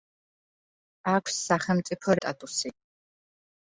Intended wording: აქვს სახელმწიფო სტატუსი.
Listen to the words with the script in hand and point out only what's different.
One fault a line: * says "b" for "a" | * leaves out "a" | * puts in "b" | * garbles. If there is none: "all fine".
all fine